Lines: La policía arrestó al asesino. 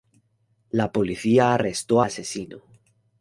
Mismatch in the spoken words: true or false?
true